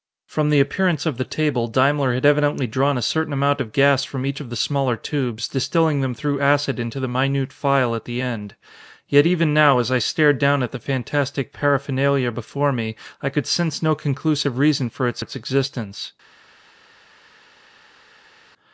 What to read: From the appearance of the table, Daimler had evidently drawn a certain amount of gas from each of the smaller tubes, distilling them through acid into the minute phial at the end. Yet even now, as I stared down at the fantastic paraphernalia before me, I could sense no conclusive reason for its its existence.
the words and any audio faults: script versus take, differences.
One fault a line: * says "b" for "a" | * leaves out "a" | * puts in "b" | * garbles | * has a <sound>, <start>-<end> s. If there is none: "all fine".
all fine